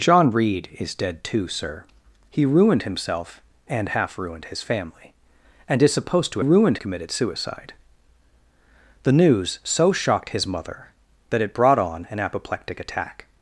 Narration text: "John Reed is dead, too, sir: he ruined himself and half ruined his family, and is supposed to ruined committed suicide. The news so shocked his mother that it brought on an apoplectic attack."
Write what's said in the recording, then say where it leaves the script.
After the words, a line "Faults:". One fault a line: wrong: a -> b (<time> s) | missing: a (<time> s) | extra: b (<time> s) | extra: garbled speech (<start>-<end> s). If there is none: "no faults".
"John Reed is dead, too, sir: he ruined himself and half ruined his family, and is supposed to ruined committed suicide. The news so shocked his mother that it brought on an apoplectic attack."
Faults:
no faults